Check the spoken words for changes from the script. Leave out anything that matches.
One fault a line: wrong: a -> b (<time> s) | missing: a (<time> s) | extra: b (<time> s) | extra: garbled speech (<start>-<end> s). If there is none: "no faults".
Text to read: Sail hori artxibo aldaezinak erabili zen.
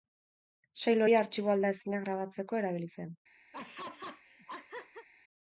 extra: grabatzeko (2.1 s)